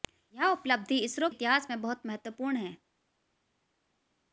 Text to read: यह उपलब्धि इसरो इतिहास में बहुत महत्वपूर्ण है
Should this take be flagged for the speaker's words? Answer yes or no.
no